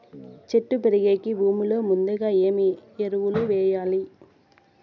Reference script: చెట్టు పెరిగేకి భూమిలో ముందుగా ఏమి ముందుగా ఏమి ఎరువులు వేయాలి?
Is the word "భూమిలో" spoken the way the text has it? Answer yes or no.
yes